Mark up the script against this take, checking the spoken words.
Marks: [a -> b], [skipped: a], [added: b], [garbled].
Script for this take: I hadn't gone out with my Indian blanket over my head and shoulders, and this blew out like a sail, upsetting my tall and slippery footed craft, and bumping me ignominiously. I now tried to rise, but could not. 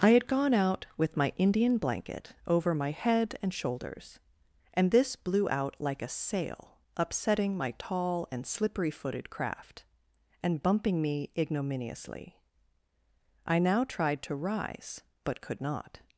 I [hadn't -> had] gone out with my Indian blanket over my head and shoulders, and this blew out like a sail, upsetting my tall and slippery footed craft, and bumping me ignominiously. I now tried to rise, but could not.